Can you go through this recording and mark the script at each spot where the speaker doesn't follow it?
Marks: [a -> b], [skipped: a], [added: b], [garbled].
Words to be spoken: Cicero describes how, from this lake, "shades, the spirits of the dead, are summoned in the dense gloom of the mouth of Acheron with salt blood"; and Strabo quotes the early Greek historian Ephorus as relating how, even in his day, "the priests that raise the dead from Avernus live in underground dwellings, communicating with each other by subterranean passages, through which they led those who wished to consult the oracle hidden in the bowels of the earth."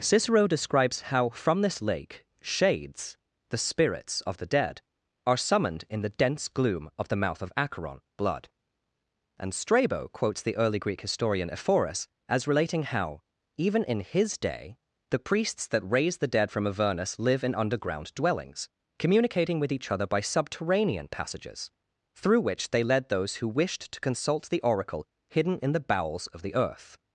Cicero describes how, from this lake, "shades, the spirits of the dead, are summoned in the dense gloom of the mouth of Acheron [skipped: with salt] blood"; and Strabo quotes the early Greek historian Ephorus as relating how, even in his day, "the priests that raise the dead from Avernus live in underground dwellings, communicating with each other by subterranean passages, through which they led those who wished to consult the oracle hidden in the bowels of the earth."